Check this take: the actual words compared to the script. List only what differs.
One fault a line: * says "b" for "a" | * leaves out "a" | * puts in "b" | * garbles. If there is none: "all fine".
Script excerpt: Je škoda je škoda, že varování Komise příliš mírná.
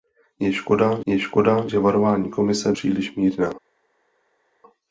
all fine